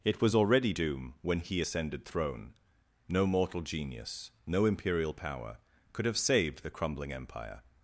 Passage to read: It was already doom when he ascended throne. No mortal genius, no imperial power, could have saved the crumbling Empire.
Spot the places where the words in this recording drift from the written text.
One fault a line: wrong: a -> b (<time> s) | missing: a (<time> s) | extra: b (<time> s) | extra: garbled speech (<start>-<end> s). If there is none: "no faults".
no faults